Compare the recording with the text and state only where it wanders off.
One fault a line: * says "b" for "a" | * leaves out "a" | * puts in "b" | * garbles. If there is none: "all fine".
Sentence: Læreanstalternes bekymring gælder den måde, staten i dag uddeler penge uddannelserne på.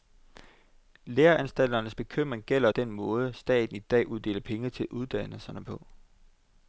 * puts in "til"